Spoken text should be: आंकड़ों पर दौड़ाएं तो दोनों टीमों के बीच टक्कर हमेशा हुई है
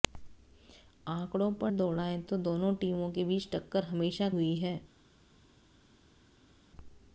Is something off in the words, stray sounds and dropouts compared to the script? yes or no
no